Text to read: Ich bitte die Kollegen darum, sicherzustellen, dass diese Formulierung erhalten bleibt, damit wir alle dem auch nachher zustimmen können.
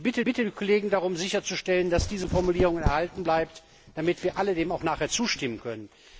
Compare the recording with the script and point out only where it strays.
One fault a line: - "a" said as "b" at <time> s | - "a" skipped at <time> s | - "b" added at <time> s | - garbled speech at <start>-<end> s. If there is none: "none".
- "bitte" added at 0.2 s